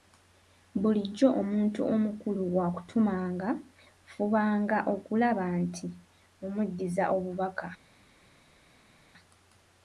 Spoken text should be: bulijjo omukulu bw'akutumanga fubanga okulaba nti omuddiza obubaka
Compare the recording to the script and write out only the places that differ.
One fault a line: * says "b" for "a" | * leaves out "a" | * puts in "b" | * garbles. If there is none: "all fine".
* puts in "omuntu"